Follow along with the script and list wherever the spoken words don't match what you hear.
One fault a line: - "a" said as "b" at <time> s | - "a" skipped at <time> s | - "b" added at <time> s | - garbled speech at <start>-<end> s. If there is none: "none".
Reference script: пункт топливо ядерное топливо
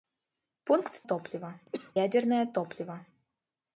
none